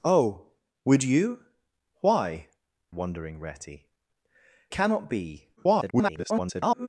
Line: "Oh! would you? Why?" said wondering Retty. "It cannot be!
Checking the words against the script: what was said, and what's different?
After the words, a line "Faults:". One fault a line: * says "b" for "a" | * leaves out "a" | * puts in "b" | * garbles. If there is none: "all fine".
"Oh! would you? Why?" wondering Retty. "Cannot be! [garbled]
Faults:
* leaves out "said"
* leaves out "It"
* garbles